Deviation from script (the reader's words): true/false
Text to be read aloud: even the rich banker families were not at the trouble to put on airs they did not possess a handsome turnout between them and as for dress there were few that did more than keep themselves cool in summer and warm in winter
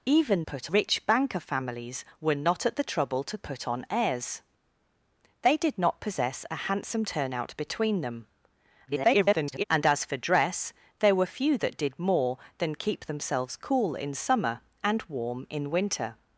true